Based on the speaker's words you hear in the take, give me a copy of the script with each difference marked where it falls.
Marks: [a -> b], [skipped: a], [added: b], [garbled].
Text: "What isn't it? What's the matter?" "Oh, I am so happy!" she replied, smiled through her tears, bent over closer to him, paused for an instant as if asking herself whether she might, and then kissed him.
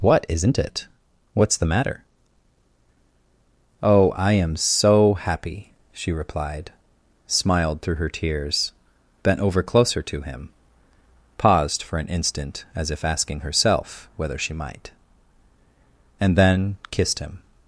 "What isn't it? What's the matter?" "Oh, I am so happy!" she replied, smiled through her tears, bent over closer to him, paused for an instant as if asking herself whether she might, and then kissed him.